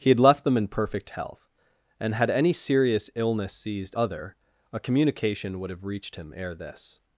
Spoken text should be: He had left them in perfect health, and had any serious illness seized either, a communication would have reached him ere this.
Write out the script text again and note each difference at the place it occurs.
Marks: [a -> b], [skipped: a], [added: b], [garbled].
He had left them in perfect health, and had any serious illness seized [either, -> other] a communication would have reached him ere this.